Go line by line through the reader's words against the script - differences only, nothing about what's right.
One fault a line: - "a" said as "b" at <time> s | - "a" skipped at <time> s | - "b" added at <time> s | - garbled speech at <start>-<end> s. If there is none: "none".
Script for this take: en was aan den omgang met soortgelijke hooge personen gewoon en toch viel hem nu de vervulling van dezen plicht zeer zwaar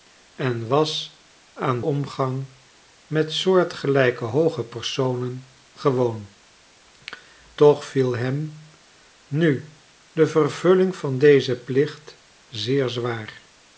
- "den" skipped at 1.8 s
- "en" skipped at 6.3 s